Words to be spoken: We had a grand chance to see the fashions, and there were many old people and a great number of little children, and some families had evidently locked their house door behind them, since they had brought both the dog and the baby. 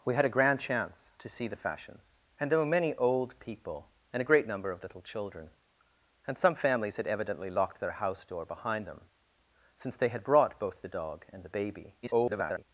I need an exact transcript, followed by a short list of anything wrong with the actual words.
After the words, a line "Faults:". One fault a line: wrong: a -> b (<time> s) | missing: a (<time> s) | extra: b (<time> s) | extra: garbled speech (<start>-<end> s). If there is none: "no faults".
We had a grand chance to see the fashions, and there were many old people and a great number of little children, and some families had evidently locked their house door behind them, since they had brought both the dog and the baby. [garbled]
Faults:
extra: garbled speech (12.0-12.6 s)